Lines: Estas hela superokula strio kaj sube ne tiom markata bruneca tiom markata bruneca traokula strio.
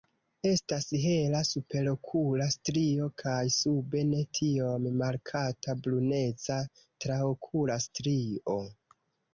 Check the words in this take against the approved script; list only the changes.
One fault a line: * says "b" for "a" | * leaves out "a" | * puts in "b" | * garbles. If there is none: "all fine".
* leaves out "tiom markata bruneca"